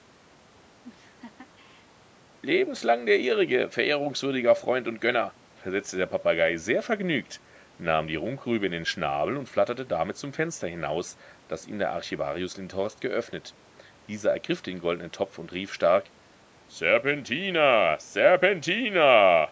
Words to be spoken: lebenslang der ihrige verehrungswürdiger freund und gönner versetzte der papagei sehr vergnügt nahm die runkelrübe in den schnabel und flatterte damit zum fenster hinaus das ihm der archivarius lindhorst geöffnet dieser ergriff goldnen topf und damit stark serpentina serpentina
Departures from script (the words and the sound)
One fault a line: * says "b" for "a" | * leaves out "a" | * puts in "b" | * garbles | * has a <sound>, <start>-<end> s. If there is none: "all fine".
* has a laugh, 0.8-1.9 s
* puts in "den"
* says "rief" for "damit"